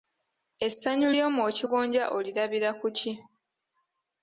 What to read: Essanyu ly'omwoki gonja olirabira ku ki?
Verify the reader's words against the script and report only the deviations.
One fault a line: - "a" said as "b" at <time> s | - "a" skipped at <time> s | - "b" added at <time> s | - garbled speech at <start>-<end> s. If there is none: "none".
none